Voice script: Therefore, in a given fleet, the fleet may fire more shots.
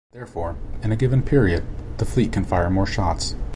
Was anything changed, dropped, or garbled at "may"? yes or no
yes